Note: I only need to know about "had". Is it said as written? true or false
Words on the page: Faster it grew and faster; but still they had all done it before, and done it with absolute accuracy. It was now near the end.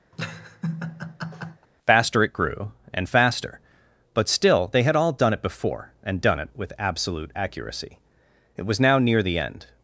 true